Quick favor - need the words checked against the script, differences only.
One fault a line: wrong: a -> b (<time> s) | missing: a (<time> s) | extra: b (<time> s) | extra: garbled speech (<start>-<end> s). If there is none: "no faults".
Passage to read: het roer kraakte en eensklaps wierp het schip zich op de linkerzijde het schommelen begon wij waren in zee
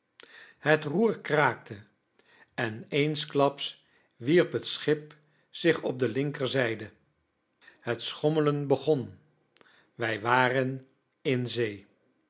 no faults